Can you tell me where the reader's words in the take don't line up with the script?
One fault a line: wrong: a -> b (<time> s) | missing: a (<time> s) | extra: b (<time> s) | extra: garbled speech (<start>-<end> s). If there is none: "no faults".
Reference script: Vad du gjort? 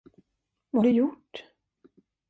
no faults